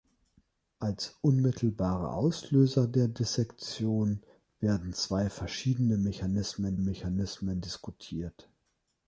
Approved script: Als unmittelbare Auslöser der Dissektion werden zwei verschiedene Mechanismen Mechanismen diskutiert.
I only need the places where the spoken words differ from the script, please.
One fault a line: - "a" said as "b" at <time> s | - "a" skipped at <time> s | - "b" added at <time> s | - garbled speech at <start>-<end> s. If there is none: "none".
none